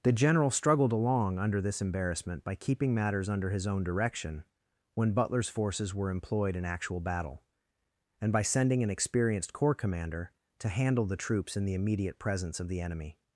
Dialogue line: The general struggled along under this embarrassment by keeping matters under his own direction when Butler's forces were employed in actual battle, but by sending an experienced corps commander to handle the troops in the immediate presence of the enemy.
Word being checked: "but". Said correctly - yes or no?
no